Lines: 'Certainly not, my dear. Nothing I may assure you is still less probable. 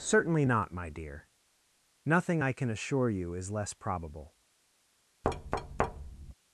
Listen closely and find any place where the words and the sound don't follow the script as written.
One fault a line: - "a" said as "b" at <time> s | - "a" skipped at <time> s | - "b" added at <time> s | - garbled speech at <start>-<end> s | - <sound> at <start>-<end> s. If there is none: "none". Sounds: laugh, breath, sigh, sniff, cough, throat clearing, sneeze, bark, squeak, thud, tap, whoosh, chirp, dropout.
- "may" said as "can" at 2.5 s
- "still" skipped at 3.5 s
- thud at 5.2-6.3 s